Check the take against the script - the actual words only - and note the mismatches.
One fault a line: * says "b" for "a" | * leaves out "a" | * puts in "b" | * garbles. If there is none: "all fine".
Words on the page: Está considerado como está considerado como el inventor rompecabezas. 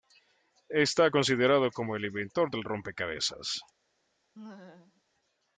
* leaves out "está considerado como"
* puts in "del"